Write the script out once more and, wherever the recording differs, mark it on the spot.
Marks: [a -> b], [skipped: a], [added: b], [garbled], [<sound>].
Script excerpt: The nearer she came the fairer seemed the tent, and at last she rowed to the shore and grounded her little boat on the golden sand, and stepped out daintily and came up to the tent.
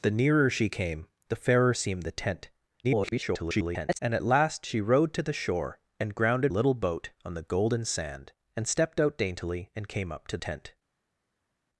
The nearer she came the fairer seemed the tent, [garbled] and at last she rowed to the shore and grounded [skipped: her] little boat on the golden sand, and stepped out daintily and came up to [skipped: the] tent.